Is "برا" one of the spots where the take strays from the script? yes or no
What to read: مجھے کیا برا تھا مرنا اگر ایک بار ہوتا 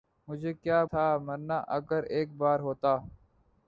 yes